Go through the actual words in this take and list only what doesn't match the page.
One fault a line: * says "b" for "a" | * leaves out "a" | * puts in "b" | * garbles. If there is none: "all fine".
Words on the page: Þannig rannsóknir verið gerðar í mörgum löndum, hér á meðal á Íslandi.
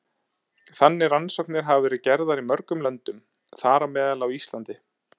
* puts in "hafa"
* says "þar" for "hér"